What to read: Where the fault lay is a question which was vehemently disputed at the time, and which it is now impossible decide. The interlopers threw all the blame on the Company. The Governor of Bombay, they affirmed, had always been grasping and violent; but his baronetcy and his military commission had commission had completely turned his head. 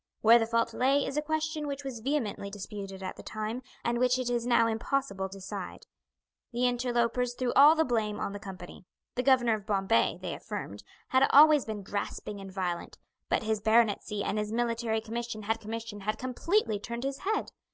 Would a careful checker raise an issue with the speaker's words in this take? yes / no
no